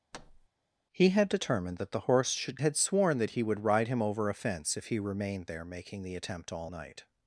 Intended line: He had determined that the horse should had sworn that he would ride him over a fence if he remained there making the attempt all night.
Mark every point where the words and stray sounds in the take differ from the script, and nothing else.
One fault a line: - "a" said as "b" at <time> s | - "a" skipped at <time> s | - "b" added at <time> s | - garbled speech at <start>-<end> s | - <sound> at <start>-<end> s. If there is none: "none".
- thud at 0.1-0.5 s